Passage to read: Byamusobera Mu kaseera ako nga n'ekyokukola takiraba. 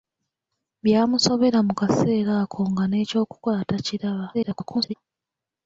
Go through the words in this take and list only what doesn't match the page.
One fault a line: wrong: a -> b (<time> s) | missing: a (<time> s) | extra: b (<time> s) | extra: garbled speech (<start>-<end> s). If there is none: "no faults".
extra: garbled speech (4.3-4.9 s)